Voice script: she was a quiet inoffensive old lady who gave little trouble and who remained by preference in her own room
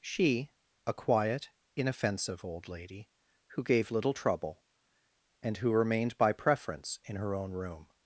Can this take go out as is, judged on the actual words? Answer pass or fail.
fail